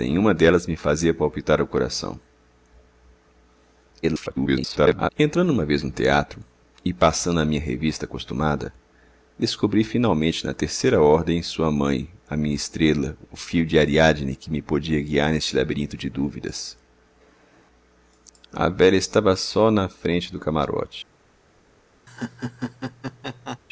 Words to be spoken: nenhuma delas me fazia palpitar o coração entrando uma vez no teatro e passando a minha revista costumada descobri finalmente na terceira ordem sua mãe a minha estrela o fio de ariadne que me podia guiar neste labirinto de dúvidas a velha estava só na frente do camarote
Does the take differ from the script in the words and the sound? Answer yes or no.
yes